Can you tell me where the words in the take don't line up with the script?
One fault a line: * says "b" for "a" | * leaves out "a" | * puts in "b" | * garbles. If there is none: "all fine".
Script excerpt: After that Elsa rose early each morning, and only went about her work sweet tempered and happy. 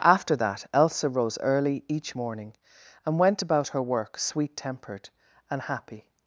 * leaves out "only"